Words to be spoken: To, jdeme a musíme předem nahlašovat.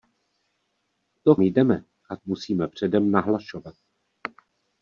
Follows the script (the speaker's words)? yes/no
yes